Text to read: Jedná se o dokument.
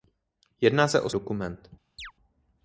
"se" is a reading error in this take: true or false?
false